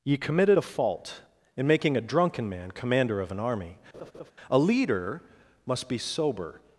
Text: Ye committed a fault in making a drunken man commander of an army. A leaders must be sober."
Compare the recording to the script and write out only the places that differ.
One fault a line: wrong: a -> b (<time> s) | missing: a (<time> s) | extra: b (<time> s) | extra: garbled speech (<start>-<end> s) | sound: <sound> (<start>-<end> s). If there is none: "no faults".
sound: laugh (3.9-4.3 s)
wrong: leaders -> leader (4.6 s)